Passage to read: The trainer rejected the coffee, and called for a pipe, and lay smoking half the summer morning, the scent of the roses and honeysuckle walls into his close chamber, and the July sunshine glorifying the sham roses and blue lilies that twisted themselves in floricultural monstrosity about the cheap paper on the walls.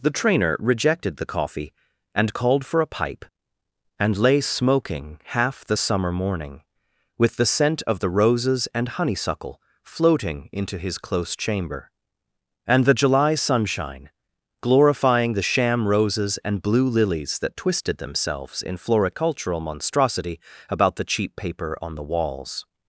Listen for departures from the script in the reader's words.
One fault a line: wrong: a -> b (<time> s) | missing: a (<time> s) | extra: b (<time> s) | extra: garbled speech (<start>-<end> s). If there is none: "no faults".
extra: with (7.2 s)
wrong: walls -> floating (9.8 s)